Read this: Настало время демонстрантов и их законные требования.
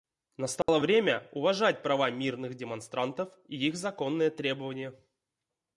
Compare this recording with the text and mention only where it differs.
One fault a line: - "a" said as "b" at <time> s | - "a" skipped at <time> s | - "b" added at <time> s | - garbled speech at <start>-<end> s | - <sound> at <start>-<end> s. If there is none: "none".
- dropout at 0.6-0.7 s
- "уважать права мирных" added at 1.3 s